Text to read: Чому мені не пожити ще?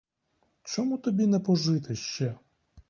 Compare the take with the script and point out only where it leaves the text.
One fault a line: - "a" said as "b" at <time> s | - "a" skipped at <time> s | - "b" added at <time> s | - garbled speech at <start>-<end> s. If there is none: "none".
- "мені" said as "тобі" at 1.0 s